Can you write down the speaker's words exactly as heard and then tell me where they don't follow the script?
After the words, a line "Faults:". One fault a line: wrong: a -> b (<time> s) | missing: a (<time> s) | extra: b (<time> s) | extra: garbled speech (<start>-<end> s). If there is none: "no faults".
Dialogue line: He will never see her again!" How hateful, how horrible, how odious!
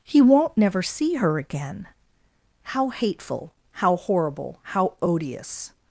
He won't never see her again!" How hateful, how horrible, how odious!
Faults:
wrong: will -> won't (0.2 s)